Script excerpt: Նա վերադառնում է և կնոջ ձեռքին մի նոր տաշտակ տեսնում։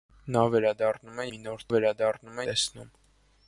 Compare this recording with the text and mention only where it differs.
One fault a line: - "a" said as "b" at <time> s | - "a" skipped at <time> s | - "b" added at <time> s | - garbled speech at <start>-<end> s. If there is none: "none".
- "և կնոջ ձեռքին" skipped at 1.3 s
- "տաշտակ" said as "վերադառնում" at 1.7 s